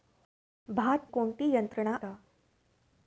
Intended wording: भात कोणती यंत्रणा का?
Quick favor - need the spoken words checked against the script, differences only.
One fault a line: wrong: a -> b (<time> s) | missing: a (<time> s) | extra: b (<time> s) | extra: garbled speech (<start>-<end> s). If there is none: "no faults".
no faults